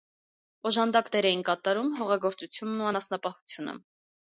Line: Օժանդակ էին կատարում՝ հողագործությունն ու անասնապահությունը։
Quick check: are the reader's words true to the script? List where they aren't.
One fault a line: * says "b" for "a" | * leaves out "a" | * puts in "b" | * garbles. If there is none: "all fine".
* puts in "դեր"